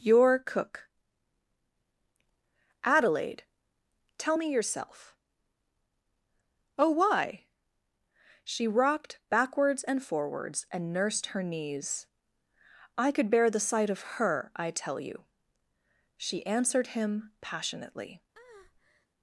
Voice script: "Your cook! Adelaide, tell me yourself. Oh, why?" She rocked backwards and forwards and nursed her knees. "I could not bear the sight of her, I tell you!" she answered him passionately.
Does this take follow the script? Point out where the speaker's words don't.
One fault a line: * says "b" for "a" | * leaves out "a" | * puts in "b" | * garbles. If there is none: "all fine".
* leaves out "not"